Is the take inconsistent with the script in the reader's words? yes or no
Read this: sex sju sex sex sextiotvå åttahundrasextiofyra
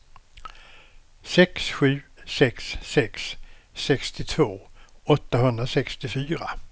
no